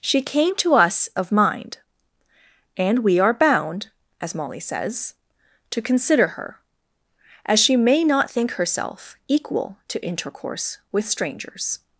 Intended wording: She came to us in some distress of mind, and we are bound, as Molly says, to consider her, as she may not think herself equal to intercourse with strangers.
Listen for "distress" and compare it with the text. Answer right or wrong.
wrong